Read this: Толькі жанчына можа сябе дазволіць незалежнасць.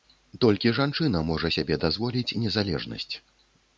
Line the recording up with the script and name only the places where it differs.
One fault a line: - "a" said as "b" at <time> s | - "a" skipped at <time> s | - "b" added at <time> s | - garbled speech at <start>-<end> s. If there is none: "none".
none